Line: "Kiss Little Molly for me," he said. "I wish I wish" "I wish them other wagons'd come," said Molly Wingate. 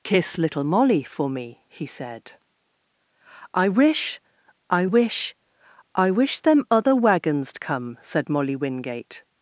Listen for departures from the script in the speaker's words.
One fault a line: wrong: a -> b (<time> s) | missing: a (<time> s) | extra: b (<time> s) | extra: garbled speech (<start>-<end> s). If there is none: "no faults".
no faults